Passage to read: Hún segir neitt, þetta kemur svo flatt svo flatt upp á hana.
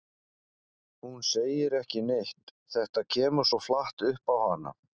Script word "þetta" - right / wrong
right